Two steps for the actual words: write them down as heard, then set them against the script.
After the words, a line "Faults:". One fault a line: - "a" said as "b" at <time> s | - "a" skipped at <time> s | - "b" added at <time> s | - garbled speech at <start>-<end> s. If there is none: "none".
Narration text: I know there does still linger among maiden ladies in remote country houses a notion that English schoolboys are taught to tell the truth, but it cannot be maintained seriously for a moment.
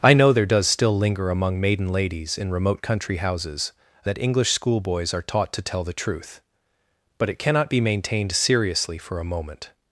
I know there does still linger among maiden ladies in remote country houses a that English schoolboys are taught to tell the truth, but it cannot be maintained seriously for a moment.
Faults:
- "notion" skipped at 4.1 s